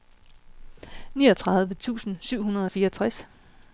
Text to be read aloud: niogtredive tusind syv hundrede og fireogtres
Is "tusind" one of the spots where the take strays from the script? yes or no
no